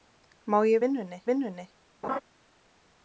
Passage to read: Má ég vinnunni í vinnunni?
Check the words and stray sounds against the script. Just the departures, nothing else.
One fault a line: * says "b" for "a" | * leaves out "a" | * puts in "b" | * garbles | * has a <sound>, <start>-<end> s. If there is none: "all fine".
* has a laugh, 2.0-2.2 s